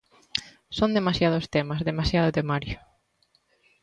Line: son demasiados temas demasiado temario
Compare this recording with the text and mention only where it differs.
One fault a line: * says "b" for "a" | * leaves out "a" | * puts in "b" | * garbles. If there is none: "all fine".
all fine